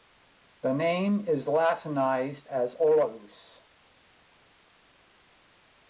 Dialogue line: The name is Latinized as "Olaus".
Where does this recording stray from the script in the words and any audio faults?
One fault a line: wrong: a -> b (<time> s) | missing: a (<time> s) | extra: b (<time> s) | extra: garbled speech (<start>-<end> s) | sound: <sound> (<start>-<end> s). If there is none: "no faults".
no faults